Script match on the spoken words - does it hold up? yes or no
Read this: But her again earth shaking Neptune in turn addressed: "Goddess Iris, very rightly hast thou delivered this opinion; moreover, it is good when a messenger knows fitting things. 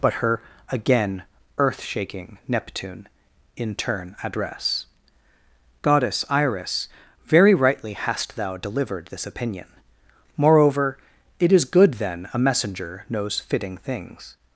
no